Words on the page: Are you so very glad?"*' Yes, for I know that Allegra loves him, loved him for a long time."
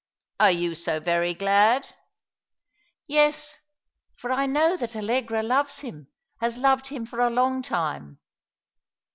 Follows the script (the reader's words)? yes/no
no